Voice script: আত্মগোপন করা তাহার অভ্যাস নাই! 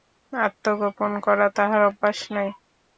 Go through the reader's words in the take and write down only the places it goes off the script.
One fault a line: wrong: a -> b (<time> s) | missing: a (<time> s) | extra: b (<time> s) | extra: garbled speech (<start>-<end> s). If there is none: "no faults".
no faults